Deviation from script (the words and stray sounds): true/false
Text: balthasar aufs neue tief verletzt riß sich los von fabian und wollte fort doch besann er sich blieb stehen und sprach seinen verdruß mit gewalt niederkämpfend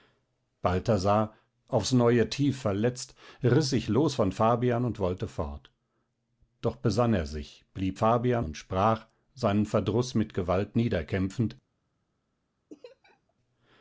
true